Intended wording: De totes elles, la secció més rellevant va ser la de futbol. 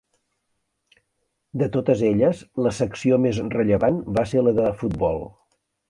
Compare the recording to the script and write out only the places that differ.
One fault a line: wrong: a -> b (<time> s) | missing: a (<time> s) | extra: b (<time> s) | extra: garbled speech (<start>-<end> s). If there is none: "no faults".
no faults